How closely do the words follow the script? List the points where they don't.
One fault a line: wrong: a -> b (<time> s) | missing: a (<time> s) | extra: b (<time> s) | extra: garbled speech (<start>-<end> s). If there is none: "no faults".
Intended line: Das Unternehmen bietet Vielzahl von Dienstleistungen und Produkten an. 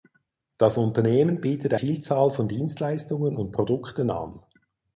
no faults